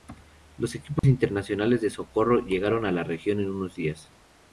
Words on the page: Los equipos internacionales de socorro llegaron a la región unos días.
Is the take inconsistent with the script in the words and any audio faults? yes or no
yes